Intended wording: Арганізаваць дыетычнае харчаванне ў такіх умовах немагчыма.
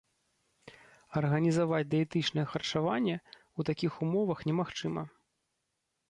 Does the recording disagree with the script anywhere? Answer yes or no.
no